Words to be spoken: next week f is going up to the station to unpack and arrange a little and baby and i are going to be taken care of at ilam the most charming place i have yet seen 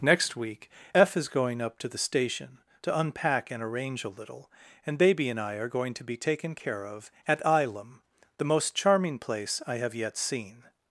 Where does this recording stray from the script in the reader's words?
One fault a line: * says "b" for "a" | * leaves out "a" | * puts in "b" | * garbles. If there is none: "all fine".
all fine